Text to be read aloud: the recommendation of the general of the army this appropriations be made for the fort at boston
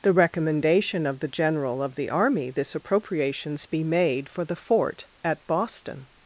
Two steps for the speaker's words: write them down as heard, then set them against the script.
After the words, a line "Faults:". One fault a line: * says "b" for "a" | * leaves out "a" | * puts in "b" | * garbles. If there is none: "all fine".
the recommendation of the general of the army this appropriations be made for the fort at boston
Faults:
all fine